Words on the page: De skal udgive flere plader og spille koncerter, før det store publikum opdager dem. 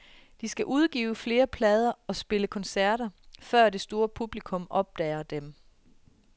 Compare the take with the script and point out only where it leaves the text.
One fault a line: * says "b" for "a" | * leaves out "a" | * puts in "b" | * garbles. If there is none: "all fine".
all fine